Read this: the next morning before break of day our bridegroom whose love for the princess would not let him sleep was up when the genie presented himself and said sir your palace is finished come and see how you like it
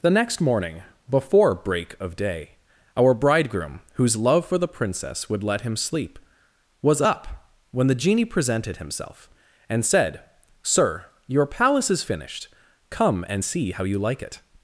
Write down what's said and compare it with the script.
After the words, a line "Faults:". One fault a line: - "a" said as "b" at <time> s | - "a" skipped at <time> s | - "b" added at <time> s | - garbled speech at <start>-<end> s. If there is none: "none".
the next morning before break of day our bridegroom whose love for the princess would let him sleep was up when the genie presented himself and said sir your palace is finished come and see how you like it
Faults:
- "not" skipped at 5.4 s